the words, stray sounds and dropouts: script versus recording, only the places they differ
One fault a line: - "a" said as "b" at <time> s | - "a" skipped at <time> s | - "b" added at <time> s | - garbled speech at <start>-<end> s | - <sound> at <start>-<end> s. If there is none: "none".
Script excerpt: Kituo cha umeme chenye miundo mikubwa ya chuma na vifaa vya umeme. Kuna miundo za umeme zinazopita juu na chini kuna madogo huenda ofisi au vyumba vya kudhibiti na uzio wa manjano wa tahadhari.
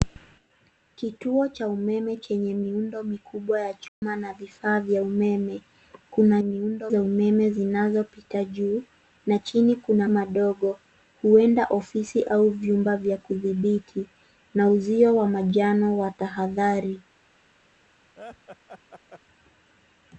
- dropout at 3.9-4.0 s
- laugh at 18.2-19.2 s